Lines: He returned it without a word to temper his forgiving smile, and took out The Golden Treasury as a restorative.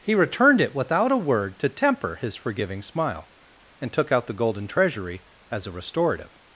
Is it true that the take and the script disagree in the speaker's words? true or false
false